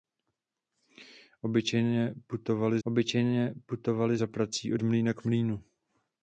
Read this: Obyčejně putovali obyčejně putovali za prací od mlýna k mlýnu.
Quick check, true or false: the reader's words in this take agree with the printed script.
true